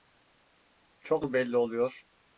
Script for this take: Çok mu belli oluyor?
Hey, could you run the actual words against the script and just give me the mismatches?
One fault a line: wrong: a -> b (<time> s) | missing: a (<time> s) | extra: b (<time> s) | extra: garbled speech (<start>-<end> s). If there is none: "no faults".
no faults